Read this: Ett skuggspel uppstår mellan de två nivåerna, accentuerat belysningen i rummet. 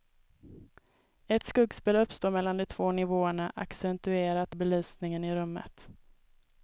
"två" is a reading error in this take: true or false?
false